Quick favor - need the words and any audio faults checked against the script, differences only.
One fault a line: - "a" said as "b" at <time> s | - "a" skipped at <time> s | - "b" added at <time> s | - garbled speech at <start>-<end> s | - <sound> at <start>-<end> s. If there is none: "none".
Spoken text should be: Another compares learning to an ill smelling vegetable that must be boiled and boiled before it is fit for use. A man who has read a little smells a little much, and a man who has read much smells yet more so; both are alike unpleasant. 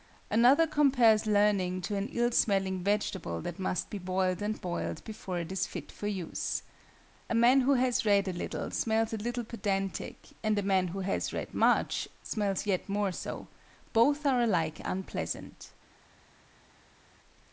- "much" said as "pedantic" at 9.4 s